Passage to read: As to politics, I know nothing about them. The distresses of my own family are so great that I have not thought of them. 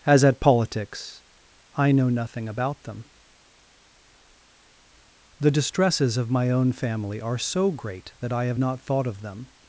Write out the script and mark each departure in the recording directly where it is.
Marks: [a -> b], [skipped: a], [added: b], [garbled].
As [to -> at] politics, I know nothing about them. The distresses of my own family are so great that I have not thought of them.